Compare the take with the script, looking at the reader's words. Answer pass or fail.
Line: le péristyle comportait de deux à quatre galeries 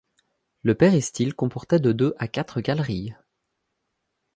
pass